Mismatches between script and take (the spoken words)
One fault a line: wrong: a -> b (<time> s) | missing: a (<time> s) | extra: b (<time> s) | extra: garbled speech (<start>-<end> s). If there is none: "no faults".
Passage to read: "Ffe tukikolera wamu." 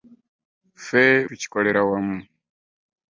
no faults